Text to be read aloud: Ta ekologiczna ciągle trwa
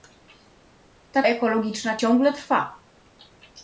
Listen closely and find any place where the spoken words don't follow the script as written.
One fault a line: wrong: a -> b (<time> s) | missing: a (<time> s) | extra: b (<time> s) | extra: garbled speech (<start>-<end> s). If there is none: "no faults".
no faults